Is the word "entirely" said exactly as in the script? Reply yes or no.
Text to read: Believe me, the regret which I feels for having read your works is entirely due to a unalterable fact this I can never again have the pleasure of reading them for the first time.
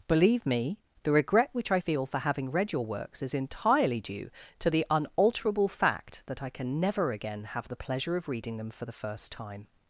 yes